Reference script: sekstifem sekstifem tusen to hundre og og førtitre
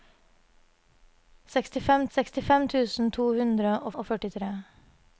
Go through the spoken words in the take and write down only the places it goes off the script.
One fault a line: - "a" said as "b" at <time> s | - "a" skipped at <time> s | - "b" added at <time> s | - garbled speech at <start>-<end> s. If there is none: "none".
none